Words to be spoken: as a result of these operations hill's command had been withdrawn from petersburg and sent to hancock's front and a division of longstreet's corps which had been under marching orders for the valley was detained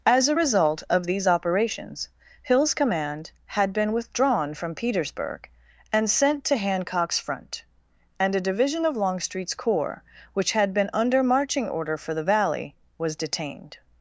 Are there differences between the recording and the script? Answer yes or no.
yes